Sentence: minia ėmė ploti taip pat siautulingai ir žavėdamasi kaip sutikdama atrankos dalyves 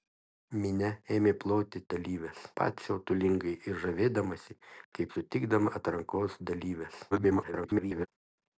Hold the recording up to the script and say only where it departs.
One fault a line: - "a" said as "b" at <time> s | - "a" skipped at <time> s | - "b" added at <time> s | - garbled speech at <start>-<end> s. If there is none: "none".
- "taip" said as "dalyves" at 2.0 s
- garbled speech at 7.1-8.1 s